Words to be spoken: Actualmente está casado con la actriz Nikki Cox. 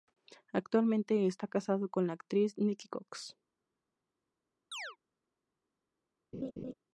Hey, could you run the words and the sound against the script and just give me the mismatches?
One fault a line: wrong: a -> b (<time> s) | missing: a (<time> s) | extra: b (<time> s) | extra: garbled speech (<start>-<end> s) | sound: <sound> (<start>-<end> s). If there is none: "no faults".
sound: chirp (4.7-5.0 s)
sound: laugh (6.3-6.7 s)